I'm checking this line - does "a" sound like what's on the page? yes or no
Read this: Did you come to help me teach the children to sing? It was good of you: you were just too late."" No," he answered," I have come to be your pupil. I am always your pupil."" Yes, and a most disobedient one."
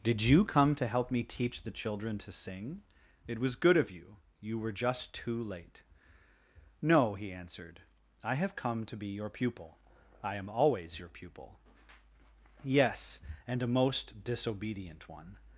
yes